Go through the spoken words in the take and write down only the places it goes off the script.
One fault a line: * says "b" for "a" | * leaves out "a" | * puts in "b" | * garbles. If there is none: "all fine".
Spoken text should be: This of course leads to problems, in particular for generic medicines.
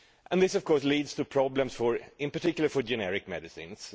all fine